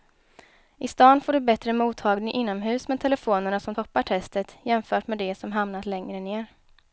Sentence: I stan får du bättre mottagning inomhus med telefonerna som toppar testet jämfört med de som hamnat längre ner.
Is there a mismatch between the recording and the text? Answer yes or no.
no